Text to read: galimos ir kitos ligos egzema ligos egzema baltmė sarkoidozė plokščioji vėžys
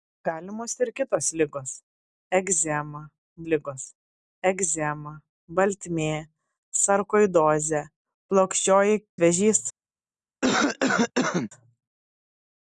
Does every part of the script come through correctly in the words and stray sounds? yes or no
no